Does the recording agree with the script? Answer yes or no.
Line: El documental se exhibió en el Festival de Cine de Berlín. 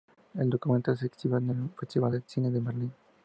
yes